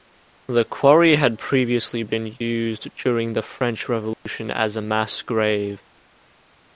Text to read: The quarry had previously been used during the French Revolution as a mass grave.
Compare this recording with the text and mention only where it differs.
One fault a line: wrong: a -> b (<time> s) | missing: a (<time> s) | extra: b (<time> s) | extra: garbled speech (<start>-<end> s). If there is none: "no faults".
no faults